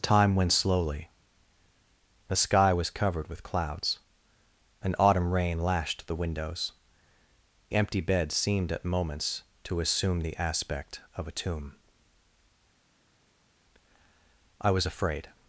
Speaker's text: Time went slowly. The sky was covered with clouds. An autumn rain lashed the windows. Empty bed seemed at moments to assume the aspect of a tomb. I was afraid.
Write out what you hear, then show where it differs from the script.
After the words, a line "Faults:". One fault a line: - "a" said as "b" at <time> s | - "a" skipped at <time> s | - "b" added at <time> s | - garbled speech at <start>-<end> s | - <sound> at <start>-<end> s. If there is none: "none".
Time went slowly. The sky was covered with clouds. An autumn rain lashed the windows. Empty bed seemed at moments to assume the aspect of a tomb. I was afraid.
Faults:
none